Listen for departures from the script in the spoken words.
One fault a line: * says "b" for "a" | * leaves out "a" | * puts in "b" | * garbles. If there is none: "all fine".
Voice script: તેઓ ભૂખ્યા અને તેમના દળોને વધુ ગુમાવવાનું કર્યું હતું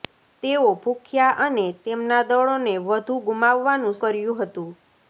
all fine